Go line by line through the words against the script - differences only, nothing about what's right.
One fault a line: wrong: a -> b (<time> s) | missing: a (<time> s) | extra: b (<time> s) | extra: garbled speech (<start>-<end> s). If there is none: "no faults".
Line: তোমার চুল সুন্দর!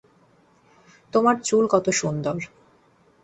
extra: কত (1.7 s)